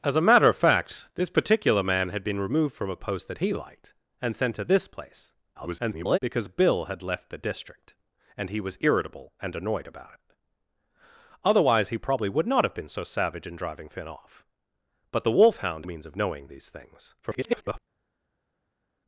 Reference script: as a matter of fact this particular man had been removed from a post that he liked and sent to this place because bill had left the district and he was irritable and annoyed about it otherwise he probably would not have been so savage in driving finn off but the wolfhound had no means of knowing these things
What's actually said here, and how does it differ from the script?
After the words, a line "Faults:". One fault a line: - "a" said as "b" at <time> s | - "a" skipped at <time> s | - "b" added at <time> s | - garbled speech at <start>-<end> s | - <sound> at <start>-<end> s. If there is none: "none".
as a matter of fact this particular man had been removed from a post that he liked and sent to this place [garbled] because bill had left the district and he was irritable and annoyed about it otherwise he probably would not have been so savage in driving finn off but the wolfhound means of knowing these things [garbled]
Faults:
- garbled speech at 5.5-6.2 s
- "had no" skipped at 15.9 s
- garbled speech at 17.2-17.8 s